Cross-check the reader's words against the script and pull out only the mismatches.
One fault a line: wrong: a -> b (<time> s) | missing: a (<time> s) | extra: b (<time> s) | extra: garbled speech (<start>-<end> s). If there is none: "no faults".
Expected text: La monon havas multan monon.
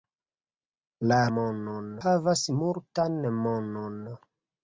no faults